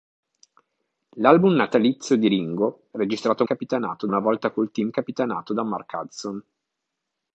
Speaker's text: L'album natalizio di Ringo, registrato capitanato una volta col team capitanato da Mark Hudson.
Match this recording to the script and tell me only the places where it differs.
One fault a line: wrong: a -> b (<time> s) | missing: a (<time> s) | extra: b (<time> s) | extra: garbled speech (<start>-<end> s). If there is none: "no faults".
no faults